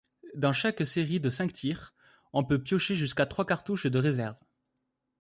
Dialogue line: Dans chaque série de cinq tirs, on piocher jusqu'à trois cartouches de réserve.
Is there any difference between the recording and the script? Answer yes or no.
yes